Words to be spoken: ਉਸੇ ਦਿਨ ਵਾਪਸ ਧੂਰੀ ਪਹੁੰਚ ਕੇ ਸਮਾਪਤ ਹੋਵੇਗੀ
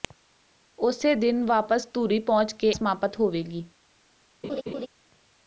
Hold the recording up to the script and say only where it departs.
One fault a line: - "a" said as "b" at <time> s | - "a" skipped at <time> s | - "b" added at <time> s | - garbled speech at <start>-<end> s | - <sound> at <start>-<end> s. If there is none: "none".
- laugh at 4.4-4.9 s